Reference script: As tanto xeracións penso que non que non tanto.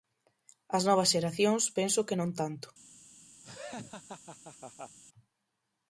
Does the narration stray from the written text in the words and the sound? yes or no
yes